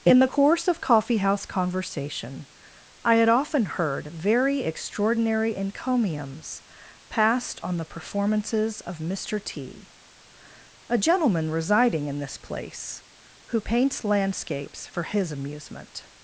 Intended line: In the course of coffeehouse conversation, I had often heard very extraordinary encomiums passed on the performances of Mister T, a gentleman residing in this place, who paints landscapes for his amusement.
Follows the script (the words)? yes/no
yes